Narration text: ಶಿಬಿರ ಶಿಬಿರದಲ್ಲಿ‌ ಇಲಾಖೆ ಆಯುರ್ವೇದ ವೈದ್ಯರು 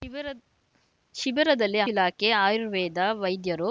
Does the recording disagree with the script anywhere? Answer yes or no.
no